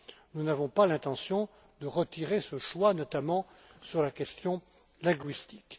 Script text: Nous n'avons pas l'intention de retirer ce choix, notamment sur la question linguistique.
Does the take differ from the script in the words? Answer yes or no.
no